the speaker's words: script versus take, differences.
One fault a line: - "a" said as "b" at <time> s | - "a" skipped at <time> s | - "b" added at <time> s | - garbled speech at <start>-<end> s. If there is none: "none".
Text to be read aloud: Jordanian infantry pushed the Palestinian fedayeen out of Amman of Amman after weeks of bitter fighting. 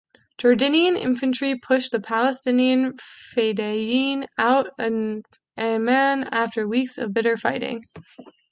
- "of Amman" skipped at 6.2 s